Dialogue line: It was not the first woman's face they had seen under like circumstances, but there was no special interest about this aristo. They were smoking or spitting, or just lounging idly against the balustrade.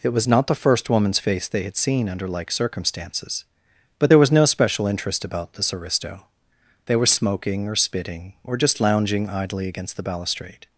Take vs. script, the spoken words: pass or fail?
pass